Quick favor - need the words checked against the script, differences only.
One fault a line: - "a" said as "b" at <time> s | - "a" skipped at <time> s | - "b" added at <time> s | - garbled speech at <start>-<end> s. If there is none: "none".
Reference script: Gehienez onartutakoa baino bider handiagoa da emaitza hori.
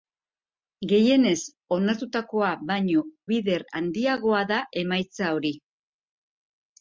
none